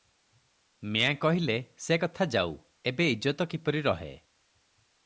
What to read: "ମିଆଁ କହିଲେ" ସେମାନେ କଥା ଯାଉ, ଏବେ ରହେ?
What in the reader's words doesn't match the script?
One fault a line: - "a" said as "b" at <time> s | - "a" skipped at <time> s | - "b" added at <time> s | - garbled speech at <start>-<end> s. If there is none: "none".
- "ସେମାନେ" said as "ସେ" at 1.8 s
- "ଇଜ୍ଜତ କିପରି" added at 3.1 s